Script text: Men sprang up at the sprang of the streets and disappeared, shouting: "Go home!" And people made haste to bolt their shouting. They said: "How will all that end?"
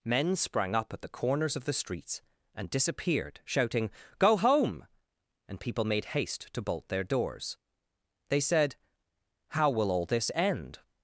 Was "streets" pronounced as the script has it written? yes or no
yes